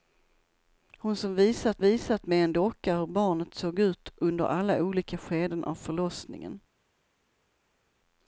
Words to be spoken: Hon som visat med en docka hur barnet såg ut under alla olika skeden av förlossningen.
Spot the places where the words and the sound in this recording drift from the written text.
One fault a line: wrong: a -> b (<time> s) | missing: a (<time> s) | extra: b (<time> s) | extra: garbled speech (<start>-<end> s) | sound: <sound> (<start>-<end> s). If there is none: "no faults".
extra: visat (1.8 s)